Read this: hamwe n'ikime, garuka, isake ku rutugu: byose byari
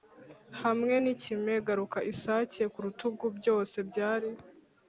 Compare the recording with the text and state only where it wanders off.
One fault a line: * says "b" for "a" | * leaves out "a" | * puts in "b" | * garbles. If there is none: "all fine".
all fine